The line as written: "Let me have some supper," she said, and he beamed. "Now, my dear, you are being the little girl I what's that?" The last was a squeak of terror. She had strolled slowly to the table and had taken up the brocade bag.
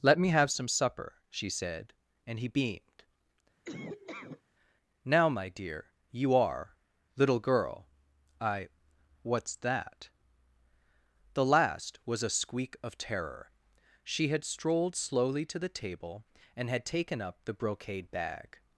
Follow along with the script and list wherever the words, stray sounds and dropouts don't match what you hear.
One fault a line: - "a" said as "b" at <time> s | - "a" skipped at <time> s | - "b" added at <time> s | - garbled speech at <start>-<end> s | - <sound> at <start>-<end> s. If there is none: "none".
- laugh at 3.6-4.4 s
- "being the" skipped at 6.8 s